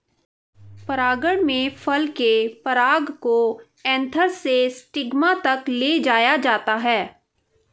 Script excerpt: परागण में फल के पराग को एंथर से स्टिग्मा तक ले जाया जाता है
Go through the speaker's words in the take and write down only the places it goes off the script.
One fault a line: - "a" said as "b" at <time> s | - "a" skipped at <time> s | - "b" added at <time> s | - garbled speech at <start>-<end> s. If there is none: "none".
none